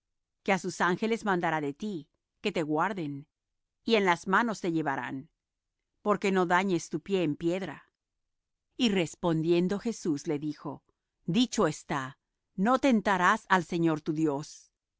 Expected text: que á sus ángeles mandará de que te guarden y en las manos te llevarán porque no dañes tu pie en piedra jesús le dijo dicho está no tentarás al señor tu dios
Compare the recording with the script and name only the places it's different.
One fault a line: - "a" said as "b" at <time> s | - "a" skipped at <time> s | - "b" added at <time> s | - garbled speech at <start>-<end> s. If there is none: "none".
- "ti" added at 1.8 s
- "y respondiendo" added at 8.8 s